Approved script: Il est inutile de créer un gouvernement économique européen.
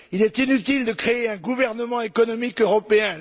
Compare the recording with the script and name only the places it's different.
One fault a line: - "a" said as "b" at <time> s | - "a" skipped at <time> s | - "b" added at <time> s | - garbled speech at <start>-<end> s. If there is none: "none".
none